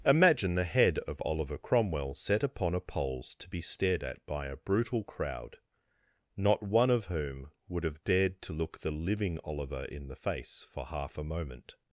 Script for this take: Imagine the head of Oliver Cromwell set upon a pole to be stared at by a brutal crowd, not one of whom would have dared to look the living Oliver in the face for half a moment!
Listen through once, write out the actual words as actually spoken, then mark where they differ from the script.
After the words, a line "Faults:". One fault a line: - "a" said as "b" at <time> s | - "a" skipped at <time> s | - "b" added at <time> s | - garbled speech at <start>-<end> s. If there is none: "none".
Imagine the head of Oliver Cromwell set upon a poles to be stared at by a brutal crowd, not one of whom would have dared to look the living Oliver in the face for half a moment!
Faults:
- "pole" said as "poles" at 2.8 s